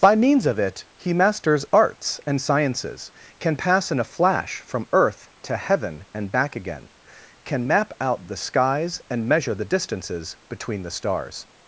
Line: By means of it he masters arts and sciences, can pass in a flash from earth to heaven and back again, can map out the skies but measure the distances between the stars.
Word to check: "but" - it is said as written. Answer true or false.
false